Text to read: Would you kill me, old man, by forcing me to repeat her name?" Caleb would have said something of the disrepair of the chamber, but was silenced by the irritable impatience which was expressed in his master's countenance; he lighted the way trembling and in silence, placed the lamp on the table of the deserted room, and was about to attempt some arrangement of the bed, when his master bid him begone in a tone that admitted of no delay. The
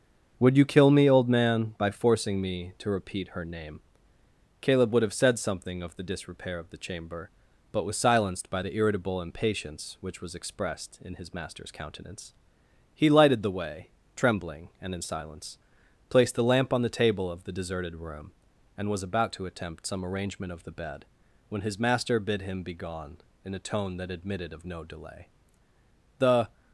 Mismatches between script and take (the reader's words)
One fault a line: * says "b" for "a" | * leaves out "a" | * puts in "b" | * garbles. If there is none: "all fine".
all fine